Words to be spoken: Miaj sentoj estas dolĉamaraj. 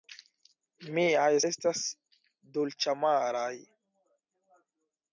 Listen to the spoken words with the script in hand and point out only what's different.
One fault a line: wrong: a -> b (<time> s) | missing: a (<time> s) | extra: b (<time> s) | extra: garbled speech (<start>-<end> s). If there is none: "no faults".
missing: sentoj (1.3 s)